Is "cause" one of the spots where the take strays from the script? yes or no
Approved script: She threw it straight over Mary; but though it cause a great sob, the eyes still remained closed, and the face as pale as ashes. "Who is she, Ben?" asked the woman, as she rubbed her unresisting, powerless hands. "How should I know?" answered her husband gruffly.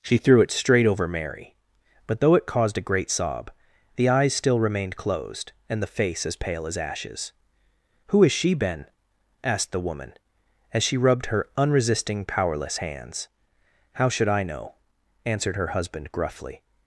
yes